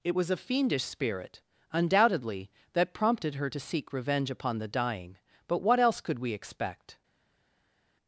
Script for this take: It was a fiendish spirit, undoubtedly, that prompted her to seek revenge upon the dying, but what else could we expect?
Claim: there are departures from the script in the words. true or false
false